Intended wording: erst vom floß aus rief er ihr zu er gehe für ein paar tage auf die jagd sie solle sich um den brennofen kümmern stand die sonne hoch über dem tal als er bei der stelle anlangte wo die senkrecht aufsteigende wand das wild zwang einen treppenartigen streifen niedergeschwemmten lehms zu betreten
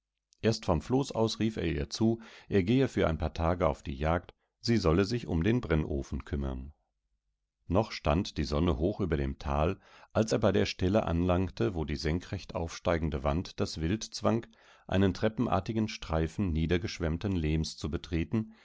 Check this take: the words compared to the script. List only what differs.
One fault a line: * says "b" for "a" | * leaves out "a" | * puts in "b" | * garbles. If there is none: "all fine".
* puts in "noch"